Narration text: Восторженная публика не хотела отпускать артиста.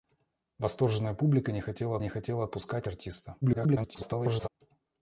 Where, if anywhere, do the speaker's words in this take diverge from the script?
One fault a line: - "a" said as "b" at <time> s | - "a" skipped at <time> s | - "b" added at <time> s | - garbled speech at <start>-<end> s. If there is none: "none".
- "не хотела" added at 2.0 s
- garbled speech at 3.4-4.5 s